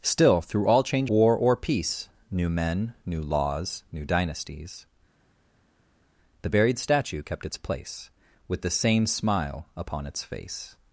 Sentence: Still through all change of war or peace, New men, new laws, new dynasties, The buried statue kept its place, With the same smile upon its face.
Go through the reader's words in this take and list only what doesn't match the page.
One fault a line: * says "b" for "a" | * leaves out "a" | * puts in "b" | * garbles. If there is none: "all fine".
* leaves out "of"